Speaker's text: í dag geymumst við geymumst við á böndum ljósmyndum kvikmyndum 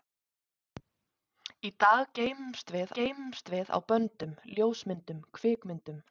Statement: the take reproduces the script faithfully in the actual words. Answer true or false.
true